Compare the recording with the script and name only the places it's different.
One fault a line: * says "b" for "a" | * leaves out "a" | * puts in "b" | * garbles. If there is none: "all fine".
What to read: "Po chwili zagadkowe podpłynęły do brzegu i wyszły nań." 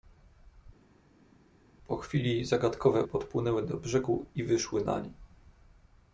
all fine